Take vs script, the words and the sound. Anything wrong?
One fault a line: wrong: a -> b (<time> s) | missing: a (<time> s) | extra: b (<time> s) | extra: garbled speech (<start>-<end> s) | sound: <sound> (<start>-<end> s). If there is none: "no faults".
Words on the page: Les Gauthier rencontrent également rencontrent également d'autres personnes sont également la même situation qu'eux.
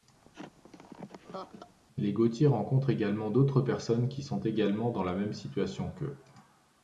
sound: laugh (0.2-1.8 s)
missing: rencontrent également (3.3 s)
extra: qui (4.1 s)
extra: dans (4.9 s)